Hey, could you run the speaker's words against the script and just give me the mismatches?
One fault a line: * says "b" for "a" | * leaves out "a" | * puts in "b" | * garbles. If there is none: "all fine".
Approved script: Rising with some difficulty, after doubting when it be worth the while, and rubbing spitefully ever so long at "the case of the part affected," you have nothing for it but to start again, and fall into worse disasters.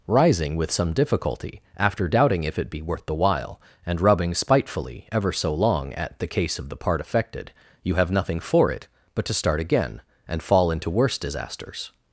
* says "if" for "when"